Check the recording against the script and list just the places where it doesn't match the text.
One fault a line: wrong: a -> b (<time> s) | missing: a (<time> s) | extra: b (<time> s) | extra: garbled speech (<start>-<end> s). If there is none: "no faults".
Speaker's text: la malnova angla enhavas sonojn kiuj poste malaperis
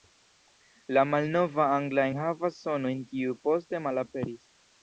no faults